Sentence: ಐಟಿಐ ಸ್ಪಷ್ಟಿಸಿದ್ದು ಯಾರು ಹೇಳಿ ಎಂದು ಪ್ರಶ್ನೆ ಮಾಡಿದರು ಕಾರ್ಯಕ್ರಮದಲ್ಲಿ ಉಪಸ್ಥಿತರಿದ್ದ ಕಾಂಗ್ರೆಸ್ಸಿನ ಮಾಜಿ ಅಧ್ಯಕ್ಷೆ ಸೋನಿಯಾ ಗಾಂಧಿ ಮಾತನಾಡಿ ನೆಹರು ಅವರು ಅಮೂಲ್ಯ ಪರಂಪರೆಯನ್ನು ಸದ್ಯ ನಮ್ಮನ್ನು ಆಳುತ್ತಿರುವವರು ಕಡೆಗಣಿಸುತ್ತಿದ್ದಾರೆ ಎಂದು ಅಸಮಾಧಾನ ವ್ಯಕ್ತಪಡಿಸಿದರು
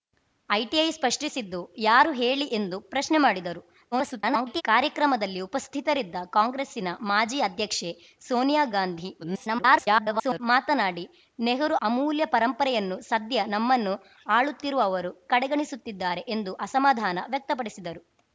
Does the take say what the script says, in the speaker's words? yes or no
no